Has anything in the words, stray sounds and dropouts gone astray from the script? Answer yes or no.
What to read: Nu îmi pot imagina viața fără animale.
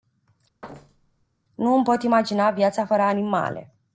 yes